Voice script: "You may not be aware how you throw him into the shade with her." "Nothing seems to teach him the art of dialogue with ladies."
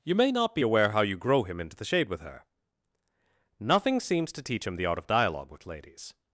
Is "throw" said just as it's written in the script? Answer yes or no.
no